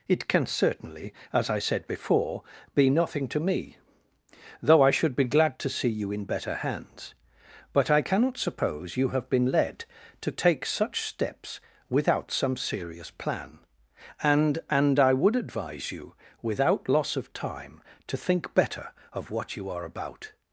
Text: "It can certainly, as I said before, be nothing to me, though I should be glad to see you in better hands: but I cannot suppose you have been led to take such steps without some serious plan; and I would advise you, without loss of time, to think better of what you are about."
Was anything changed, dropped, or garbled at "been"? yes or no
no